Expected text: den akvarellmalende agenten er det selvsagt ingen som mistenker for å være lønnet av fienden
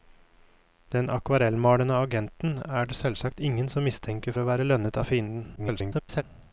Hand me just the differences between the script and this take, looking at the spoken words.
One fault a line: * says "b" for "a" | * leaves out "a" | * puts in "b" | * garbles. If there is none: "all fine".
* leaves out "for"
* garbles